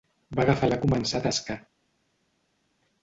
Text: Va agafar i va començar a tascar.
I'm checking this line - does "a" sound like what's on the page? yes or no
yes